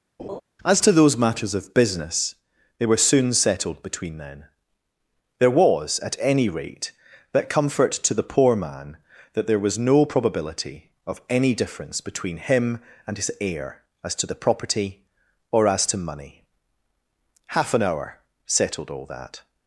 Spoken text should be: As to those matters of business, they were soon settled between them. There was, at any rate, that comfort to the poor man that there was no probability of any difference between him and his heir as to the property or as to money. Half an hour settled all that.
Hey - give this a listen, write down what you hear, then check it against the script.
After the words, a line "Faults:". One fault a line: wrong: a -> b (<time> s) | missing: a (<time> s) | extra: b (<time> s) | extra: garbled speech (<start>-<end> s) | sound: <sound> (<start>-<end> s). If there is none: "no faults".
As to those matters of business, they were soon settled between then. There was, at any rate, that comfort to the poor man that there was no probability of any difference between him and his heir as to the property or as to money. Half an hour settled all that.
Faults:
sound: laugh (0.2-0.4 s)
wrong: them -> then (4.2 s)